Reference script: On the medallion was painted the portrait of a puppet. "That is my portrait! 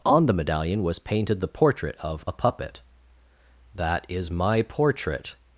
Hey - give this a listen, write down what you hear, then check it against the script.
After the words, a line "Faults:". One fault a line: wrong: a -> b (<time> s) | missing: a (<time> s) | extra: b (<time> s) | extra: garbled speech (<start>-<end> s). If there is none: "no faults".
On the medallion was painted the portrait of a puppet. "That is my portrait!
Faults:
no faults